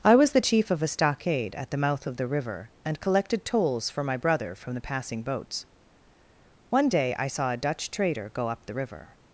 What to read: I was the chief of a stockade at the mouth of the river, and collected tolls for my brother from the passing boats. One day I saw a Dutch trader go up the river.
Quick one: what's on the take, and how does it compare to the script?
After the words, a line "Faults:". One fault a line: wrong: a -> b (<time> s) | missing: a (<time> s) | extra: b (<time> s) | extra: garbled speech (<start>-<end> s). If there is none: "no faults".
I was the chief of a stockade at the mouth of the river, and collected tolls for my brother from the passing boats. One day I saw a Dutch trader go up the river.
Faults:
no faults